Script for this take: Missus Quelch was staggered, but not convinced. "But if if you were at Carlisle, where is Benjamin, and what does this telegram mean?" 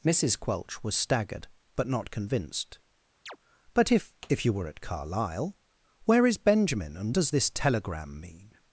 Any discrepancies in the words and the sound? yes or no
yes